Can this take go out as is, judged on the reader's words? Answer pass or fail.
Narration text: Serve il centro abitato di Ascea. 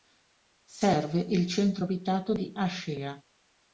pass